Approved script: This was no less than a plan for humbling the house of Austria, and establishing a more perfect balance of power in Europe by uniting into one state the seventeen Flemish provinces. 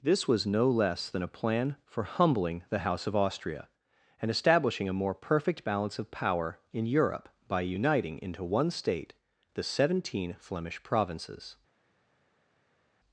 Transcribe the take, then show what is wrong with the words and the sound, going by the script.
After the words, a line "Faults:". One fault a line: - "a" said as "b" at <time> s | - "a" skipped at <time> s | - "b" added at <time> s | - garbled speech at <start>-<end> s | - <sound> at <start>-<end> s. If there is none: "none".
This was no less than a plan for humbling the house of Austria, and establishing a more perfect balance of power in Europe by uniting into one state the seventeen Flemish provinces.
Faults:
none